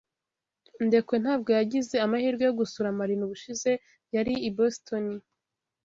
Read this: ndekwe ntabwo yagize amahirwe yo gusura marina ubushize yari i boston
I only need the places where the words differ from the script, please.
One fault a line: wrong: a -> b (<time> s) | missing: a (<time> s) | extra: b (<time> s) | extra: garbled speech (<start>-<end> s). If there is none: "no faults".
no faults